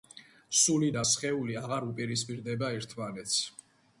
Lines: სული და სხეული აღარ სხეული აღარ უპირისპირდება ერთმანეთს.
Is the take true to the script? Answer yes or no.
no